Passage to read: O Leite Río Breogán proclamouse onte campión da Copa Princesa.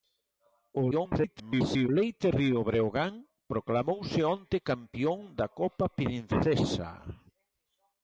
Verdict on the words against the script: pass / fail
fail